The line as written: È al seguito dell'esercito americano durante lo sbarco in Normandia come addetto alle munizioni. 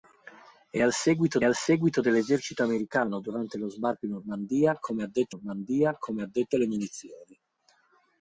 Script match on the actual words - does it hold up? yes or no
no